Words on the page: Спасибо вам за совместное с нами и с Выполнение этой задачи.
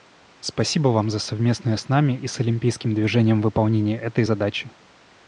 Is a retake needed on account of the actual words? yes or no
yes